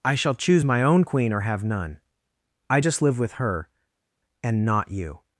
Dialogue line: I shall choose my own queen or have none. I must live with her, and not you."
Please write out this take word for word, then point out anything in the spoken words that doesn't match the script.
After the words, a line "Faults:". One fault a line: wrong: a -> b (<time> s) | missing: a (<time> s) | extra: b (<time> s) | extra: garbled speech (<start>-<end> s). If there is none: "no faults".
I shall choose my own queen or have none. I just live with her, and not you."
Faults:
wrong: must -> just (2.8 s)